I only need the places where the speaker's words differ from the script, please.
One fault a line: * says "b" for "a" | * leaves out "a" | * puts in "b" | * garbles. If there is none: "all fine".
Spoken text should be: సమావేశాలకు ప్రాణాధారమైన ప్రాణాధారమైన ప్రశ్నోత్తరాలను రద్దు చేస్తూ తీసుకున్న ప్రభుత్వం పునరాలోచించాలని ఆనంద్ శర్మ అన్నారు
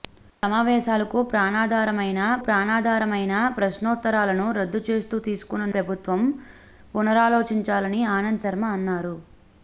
all fine